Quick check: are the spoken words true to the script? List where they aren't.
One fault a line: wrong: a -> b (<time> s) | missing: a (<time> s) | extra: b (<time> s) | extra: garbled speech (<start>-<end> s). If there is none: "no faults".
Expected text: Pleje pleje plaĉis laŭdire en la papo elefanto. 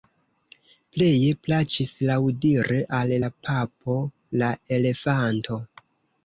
missing: pleje (1.3 s)
wrong: en -> al (3.0 s)
extra: la (4.4 s)